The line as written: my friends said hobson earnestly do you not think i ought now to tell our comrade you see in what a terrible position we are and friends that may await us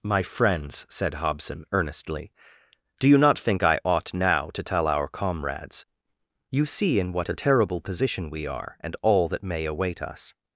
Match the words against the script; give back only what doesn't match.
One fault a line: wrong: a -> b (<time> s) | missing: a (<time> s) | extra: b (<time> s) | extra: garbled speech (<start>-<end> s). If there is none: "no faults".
wrong: comrade -> comrades (5.1 s)
wrong: friends -> all (9.0 s)